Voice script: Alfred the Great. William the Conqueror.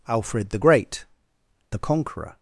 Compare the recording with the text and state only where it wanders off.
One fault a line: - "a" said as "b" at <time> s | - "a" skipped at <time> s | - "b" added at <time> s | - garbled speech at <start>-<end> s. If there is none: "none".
- "William" skipped at 1.0 s